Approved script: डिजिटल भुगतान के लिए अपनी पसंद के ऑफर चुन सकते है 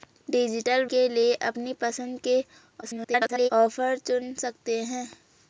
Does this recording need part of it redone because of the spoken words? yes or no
yes